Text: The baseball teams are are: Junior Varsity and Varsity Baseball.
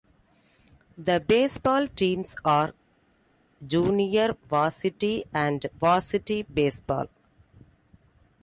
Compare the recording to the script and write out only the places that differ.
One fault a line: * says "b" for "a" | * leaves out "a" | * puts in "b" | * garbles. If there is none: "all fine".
* leaves out "are"